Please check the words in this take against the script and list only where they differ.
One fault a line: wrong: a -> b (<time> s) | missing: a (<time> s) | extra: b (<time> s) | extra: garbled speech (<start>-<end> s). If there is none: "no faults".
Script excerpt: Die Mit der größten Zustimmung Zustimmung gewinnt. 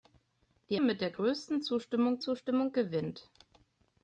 no faults